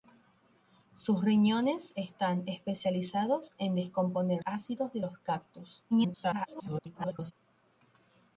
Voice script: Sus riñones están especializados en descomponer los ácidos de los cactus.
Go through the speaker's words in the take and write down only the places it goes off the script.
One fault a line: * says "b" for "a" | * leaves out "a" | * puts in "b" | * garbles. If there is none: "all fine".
* leaves out "los"
* garbles